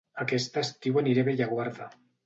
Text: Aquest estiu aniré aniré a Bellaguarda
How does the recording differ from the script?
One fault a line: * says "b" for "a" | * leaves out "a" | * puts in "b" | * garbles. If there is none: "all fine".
* leaves out "aniré"